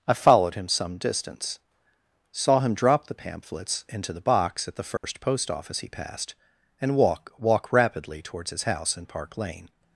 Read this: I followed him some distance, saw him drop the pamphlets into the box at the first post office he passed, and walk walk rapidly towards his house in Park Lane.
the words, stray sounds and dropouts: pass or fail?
fail